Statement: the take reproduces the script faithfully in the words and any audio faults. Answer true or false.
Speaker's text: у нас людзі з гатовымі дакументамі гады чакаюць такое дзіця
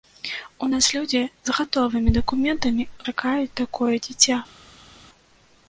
false